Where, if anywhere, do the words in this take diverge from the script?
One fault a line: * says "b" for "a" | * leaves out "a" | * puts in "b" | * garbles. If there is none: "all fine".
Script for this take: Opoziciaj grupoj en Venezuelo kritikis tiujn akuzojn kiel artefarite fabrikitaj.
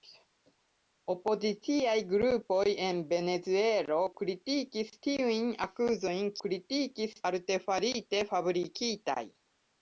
* says "kritikis" for "kiel"